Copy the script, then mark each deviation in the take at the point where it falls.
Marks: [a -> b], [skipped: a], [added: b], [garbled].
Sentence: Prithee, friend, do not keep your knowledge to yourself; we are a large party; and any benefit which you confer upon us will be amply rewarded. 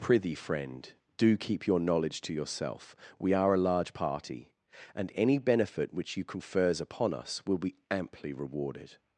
Prithee, friend, do [skipped: not] keep your knowledge to yourself; we are a large party; and any benefit which you [confer -> confers] upon us will be amply rewarded.